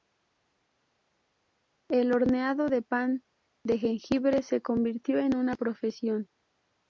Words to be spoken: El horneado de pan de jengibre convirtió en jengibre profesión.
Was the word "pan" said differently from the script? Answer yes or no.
no